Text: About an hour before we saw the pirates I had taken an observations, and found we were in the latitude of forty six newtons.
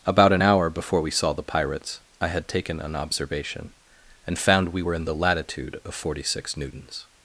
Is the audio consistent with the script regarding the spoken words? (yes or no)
no